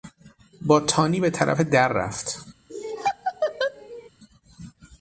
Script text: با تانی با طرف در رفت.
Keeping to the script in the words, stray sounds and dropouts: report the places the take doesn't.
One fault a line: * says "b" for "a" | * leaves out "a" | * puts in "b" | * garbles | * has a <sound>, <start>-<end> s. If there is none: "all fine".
* says "به" for "با"
* has a laugh, 2.7-4.1 s